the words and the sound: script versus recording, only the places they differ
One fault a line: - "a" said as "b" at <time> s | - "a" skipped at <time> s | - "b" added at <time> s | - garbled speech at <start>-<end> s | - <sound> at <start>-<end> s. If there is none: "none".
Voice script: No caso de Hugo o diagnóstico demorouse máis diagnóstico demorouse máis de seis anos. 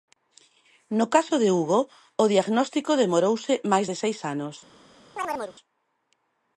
- "diagnóstico demorouse máis" skipped at 3.9 s
- chirp at 5.2-5.6 s